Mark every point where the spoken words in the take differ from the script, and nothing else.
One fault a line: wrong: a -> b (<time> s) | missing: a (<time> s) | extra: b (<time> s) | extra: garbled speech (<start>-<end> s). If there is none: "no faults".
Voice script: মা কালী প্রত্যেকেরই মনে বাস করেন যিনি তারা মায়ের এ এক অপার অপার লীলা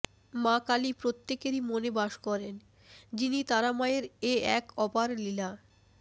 missing: অপার (5.1 s)